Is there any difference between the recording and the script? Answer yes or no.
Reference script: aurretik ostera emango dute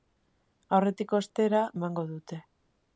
no